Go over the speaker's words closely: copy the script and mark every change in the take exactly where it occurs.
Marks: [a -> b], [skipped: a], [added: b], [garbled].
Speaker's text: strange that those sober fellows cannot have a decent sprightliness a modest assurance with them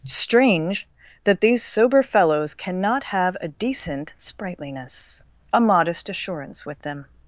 strange that [those -> these] sober fellows cannot have a decent sprightliness a modest assurance with them